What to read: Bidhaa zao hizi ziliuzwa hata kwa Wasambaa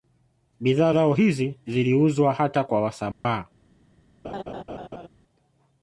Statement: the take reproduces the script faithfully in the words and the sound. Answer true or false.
false